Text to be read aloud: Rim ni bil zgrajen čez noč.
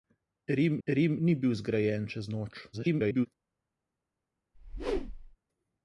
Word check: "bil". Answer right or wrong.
right